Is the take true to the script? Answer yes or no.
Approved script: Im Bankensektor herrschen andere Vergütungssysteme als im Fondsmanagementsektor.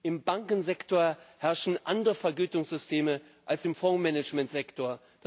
yes